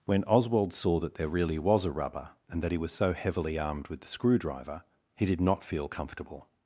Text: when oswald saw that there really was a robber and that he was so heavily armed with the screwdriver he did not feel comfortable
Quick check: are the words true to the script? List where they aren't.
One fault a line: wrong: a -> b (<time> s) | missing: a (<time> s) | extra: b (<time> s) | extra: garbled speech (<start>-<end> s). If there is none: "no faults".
wrong: robber -> rubber (1.9 s)